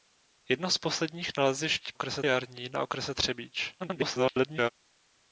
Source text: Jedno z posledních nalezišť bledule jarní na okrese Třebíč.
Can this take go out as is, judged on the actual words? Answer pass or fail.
fail